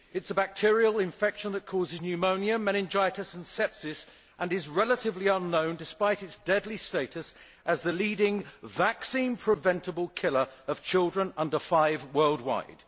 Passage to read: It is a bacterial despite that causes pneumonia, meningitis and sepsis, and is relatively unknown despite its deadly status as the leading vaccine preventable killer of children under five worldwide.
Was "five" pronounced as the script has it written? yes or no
yes